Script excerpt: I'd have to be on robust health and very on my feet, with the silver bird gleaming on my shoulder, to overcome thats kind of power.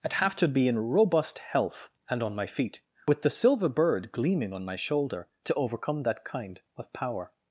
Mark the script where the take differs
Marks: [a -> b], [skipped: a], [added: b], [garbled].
I'd have to be [on -> in] robust health and [skipped: very] on my feet, with the silver bird gleaming on my shoulder, to overcome [thats -> that] kind of power.